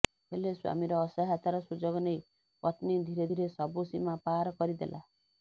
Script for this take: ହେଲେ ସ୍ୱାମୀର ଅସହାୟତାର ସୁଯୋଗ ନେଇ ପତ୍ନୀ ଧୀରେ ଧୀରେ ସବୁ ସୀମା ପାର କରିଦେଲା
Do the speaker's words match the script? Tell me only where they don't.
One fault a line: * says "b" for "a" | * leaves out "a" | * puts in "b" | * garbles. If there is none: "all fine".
all fine